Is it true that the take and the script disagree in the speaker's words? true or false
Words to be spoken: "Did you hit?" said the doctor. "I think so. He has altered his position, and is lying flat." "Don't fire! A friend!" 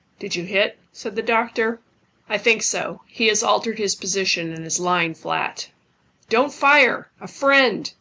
false